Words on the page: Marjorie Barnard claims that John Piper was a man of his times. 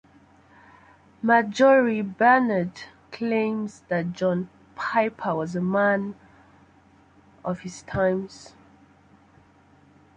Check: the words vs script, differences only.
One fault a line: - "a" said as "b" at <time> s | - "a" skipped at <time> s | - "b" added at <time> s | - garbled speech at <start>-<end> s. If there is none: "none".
none